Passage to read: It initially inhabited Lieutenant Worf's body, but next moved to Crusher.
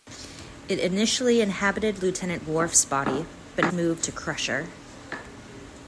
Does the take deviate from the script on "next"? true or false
true